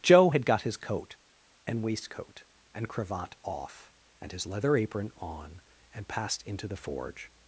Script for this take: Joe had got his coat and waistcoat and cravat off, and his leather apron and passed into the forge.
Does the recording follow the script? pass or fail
fail